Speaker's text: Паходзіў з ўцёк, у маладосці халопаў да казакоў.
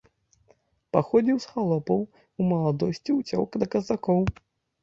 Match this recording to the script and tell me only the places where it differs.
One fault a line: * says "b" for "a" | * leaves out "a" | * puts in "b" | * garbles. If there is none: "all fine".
* says "халопаў" for "ўцёк"
* says "ўцёк" for "халопаў"